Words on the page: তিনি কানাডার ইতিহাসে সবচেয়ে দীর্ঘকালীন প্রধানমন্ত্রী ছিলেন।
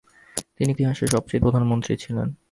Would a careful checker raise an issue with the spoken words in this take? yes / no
yes